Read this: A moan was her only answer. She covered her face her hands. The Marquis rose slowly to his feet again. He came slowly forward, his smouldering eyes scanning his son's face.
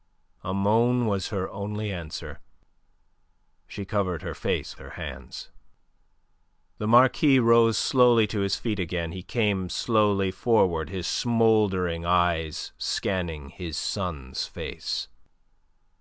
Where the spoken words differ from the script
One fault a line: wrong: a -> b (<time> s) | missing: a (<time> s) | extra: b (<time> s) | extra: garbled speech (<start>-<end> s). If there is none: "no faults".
no faults